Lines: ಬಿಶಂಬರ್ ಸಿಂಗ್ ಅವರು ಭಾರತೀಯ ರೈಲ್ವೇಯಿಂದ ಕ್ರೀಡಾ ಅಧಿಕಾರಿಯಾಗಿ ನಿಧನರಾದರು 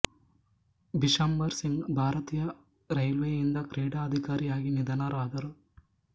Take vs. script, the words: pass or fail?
fail